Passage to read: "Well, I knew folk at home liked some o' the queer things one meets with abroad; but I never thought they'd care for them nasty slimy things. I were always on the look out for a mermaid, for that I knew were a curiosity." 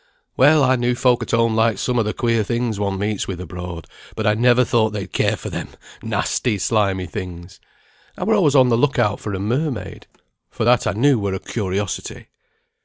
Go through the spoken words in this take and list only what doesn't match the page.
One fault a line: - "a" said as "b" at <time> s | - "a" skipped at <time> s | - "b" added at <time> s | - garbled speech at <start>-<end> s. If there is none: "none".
none